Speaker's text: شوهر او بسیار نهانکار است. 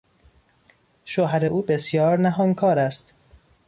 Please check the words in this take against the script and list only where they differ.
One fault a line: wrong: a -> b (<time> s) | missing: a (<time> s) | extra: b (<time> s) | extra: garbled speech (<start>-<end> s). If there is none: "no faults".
no faults